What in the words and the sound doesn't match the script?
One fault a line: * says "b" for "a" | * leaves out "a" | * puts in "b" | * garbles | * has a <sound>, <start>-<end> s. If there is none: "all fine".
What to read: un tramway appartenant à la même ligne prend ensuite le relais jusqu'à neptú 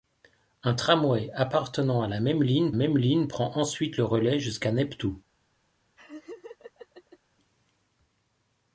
* puts in "même ligne"
* has a laugh, 6.0-7.2 s